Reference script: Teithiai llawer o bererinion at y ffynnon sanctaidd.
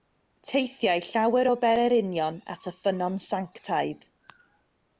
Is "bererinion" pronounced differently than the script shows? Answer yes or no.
no